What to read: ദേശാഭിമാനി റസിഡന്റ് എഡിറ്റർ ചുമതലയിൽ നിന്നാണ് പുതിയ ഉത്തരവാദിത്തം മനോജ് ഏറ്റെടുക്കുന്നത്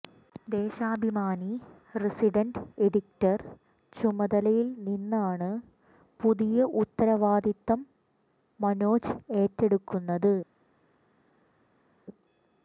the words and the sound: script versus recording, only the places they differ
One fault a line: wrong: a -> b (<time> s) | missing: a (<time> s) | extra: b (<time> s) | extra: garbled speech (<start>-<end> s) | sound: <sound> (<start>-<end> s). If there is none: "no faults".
no faults